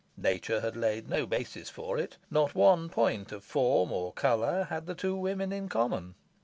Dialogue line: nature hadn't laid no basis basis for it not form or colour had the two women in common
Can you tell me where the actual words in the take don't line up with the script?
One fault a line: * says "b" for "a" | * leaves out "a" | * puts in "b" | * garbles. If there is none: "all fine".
* says "had" for "hadn't"
* leaves out "basis"
* puts in "one point of"